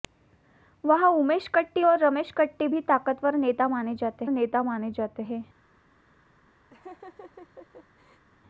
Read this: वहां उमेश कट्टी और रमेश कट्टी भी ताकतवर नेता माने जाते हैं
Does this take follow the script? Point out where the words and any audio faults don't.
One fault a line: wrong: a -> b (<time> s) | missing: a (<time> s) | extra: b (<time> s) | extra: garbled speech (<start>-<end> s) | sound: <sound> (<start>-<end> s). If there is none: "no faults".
extra: नेता माने जाते (4.3 s)
sound: laugh (6.7-8.2 s)